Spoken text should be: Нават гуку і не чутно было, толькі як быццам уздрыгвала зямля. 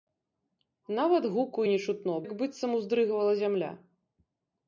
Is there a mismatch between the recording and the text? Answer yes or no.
yes